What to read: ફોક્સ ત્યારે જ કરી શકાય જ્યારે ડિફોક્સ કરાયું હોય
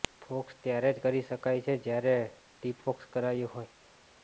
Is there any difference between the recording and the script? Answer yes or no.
yes